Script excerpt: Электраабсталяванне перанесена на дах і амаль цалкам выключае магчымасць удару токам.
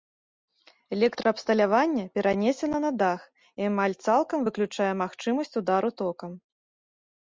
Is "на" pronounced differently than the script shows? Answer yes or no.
no